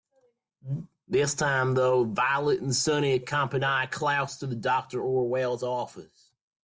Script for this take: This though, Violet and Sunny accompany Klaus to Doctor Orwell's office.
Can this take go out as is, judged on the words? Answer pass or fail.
fail